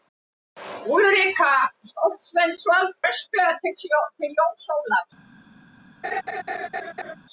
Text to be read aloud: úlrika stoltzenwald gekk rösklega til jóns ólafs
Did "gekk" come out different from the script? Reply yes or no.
yes